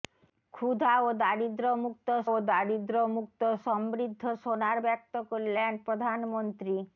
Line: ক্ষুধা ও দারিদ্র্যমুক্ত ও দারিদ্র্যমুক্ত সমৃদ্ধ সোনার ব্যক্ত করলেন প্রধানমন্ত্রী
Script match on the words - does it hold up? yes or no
yes